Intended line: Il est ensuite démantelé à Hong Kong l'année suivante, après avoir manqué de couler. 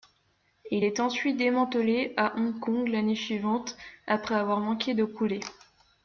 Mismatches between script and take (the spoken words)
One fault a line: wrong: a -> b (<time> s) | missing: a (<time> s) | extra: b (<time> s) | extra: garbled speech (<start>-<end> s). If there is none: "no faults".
no faults